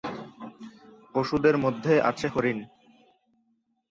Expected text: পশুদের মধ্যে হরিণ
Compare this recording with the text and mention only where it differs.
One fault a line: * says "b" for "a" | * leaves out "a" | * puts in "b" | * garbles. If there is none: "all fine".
* puts in "আছে"